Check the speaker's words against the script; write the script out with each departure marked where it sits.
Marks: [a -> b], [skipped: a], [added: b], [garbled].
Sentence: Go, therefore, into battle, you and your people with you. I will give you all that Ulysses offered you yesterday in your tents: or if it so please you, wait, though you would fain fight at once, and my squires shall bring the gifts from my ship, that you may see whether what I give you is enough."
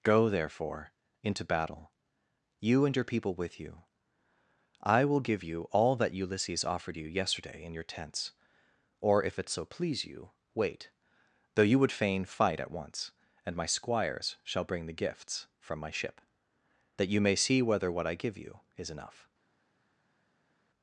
Go, therefore, into battle, you and your people with you. I will give you all that Ulysses offered you yesterday in your tents: or if it so please you, wait, though you would fain fight at once, and my squires shall bring the gifts from my ship, that you may see whether what I give you is enough."